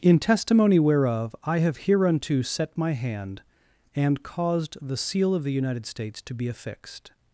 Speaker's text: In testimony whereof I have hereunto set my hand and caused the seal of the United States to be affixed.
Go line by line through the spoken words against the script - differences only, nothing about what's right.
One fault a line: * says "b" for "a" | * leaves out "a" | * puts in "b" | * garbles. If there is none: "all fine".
all fine